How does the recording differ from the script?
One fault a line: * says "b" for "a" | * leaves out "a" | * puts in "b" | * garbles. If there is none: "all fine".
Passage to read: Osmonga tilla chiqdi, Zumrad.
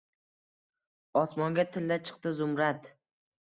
all fine